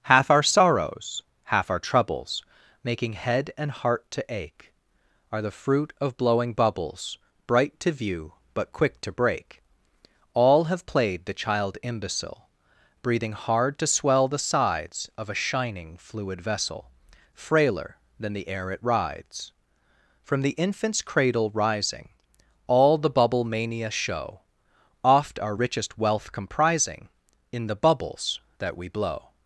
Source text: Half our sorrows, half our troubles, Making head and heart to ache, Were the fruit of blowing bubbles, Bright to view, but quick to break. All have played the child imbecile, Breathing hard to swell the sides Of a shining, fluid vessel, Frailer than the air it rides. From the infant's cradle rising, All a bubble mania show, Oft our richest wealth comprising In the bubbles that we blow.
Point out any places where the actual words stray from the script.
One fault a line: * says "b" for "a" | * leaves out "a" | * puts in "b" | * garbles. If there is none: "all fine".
* says "Are" for "Were"
* says "the" for "a"